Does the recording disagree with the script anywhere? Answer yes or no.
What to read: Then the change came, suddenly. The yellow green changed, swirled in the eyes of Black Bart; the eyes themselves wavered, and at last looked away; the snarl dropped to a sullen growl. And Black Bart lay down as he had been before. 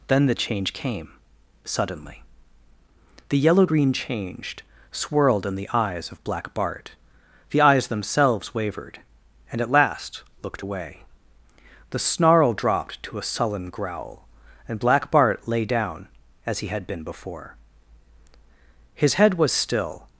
yes